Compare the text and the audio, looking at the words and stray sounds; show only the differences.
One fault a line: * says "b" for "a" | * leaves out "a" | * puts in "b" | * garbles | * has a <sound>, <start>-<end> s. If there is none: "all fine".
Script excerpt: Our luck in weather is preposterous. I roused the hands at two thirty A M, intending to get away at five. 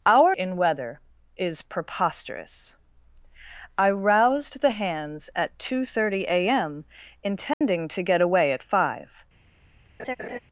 * leaves out "luck"
* has a dropout, 7.5-7.6 s
* has a laugh, 10.0-10.4 s